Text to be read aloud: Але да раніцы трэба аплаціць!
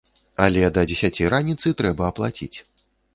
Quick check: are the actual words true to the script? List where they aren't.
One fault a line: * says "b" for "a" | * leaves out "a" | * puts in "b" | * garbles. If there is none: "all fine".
* puts in "дзесяці"